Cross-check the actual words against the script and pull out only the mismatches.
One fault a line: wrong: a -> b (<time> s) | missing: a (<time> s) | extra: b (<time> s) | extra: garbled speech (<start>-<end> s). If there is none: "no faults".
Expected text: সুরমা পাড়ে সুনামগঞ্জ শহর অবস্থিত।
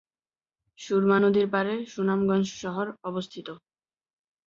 extra: নদীর (1.2 s)